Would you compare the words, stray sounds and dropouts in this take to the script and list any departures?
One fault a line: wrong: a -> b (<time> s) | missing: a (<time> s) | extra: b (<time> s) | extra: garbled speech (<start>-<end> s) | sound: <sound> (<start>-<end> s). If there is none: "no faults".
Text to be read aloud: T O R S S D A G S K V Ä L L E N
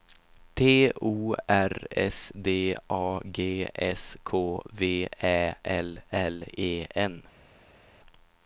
missing: S (2.3 s)